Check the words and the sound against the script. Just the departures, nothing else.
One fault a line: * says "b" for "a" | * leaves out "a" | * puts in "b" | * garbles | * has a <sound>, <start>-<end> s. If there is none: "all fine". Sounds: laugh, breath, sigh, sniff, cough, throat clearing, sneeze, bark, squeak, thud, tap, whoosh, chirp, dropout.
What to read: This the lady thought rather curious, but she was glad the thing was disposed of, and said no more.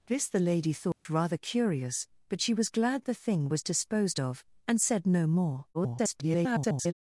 * has a dropout, 0.9-1.1 s
* garbles